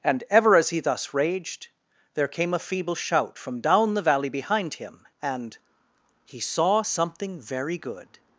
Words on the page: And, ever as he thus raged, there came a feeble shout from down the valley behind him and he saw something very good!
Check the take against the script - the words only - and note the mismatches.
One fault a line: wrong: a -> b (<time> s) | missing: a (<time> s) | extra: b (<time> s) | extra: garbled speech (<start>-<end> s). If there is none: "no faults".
no faults